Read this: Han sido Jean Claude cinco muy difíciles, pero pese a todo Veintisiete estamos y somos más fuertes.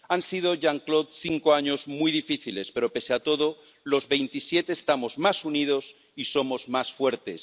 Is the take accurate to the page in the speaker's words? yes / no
no